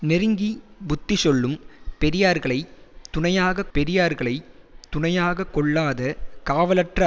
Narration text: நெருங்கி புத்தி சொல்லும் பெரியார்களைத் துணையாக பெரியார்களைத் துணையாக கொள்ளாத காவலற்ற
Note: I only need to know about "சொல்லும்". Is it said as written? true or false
true